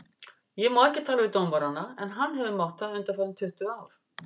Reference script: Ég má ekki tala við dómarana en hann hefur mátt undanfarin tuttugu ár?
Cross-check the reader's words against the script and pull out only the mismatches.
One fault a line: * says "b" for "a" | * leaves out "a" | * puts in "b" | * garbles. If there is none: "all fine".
* puts in "það"